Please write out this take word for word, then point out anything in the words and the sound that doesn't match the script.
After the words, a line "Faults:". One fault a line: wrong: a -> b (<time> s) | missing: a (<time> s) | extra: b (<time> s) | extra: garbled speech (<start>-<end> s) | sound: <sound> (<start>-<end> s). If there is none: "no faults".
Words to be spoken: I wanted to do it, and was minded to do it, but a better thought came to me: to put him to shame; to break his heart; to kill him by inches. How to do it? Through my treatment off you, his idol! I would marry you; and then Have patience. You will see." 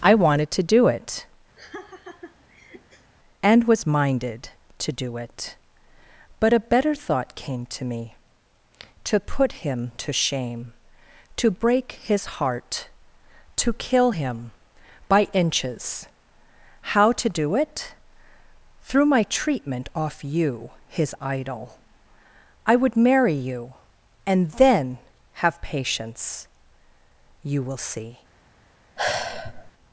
I wanted to do it, and was minded to do it, but a better thought came to me: to put him to shame; to break his heart; to kill him by inches. How to do it? Through my treatment off you, his idol! I would marry you; and then Have patience. You will see."
Faults:
sound: laugh (1.6-3.1 s)
sound: sigh (29.0-29.7 s)